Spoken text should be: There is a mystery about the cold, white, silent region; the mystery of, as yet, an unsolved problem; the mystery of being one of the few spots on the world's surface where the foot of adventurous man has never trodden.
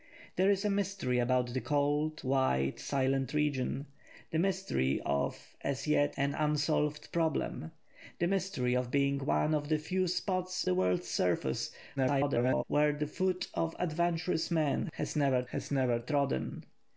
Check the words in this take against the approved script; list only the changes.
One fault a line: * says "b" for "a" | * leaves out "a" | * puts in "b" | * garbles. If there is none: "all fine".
* leaves out "on"
* garbles
* puts in "has never"